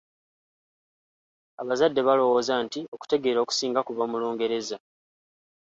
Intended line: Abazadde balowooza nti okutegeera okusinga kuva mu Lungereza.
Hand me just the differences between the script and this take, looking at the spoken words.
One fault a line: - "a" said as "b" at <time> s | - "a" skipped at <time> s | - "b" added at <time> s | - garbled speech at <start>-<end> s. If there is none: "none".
none